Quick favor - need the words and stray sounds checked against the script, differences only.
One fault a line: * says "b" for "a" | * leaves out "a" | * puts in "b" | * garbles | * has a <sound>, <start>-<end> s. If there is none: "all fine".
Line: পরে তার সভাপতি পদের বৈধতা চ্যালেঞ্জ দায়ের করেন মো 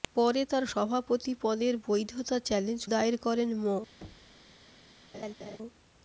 * has a thud, 4.0-4.4 s
* has a laugh, 5.1-5.6 s